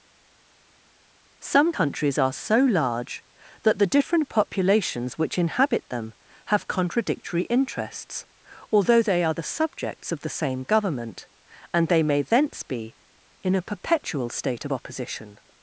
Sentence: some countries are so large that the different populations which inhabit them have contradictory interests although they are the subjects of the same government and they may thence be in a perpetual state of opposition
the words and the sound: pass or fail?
pass